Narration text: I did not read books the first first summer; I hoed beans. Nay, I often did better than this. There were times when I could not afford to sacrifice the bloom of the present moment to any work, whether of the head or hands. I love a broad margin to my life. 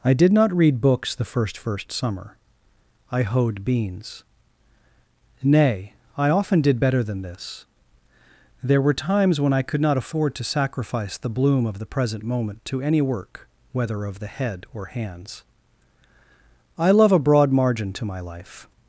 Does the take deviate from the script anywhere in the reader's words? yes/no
no